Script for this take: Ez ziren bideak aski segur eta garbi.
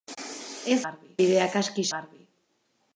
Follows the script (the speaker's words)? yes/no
no